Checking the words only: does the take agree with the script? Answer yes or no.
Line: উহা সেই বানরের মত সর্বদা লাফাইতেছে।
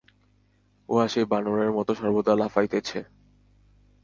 yes